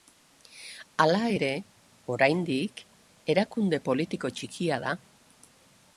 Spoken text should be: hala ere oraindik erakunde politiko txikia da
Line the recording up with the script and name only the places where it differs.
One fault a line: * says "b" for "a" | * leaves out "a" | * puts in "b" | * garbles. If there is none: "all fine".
all fine